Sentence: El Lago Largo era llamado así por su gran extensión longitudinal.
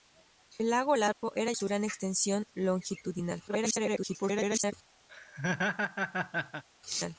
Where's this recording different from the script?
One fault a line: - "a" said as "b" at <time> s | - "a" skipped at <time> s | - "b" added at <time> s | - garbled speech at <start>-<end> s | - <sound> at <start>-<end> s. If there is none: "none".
- dropout at 1.1-1.2 s
- "llamado así por" skipped at 1.5 s
- garbled speech at 3.5-4.7 s
- laugh at 5.1-6.6 s